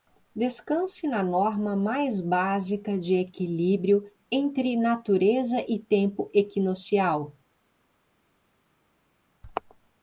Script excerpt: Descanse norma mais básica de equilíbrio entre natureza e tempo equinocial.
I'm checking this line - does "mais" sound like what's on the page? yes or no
yes